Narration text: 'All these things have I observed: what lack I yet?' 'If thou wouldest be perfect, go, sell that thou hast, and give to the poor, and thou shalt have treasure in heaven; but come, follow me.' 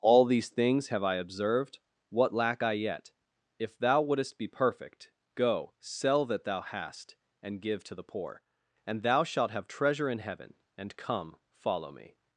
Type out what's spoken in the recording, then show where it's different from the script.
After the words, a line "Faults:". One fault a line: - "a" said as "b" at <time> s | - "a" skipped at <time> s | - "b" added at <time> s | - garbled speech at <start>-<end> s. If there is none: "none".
'All these things have I observed: what lack I yet?' 'If thou wouldest be perfect, go, sell that thou hast, and give to the poor, and thou shalt have treasure in heaven; and come, follow me.'
Faults:
- "but" said as "and" at 10.8 s